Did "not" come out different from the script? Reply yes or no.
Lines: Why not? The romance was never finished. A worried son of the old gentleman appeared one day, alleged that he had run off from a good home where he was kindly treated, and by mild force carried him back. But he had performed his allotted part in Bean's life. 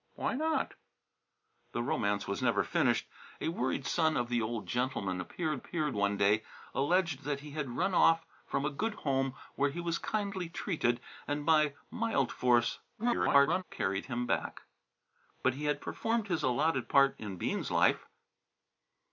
no